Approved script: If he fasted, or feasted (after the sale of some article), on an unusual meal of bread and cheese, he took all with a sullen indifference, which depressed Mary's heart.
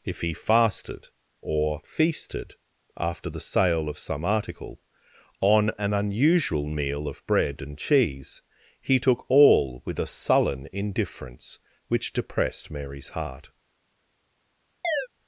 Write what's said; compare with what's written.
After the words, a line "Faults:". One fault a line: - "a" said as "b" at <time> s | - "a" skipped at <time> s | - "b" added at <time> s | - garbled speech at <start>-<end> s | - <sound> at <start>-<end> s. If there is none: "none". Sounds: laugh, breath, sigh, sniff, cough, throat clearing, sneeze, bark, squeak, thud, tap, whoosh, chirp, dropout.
If he fasted, or feasted (after the sale of some article), on an unusual meal of bread and cheese, he took all with a sullen indifference, which depressed Mary's heart.
Faults:
- chirp at 14.8-15.1 s